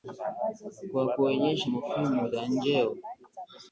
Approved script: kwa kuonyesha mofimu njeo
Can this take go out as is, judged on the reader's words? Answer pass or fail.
fail